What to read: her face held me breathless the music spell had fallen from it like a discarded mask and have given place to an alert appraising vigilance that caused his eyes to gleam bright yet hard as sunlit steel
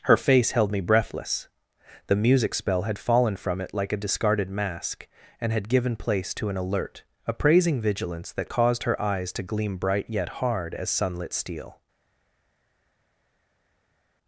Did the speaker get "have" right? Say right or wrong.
wrong